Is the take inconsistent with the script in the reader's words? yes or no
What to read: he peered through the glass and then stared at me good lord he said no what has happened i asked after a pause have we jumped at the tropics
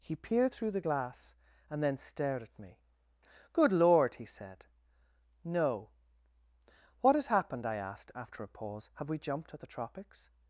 no